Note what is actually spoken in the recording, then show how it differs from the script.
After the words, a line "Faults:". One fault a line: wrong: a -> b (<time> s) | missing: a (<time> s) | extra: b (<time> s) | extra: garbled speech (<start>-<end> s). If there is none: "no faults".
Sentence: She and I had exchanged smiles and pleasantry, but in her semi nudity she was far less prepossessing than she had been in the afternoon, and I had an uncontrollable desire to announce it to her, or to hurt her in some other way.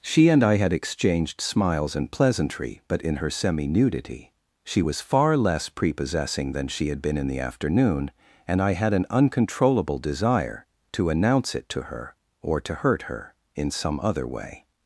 She and I had exchanged smiles and pleasantry, but in her semi nudity she was far less prepossessing than she had been in the afternoon, and I had an uncontrollable desire to announce it to her, or to hurt her in some other way.
Faults:
no faults